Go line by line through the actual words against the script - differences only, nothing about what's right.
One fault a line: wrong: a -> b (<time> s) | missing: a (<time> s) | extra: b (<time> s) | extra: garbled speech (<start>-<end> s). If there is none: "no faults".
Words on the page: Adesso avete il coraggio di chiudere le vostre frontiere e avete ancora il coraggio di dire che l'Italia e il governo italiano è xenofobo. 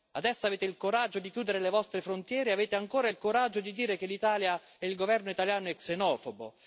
no faults